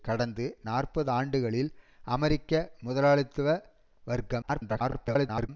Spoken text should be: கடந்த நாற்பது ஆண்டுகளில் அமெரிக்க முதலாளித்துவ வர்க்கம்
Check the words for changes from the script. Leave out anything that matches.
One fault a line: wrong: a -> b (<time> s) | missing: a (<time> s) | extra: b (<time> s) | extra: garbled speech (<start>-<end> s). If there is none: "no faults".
extra: garbled speech (4.4-5.5 s)